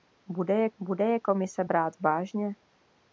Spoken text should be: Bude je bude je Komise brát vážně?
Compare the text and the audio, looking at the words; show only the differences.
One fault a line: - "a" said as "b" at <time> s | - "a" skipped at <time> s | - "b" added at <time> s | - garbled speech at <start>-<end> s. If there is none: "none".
none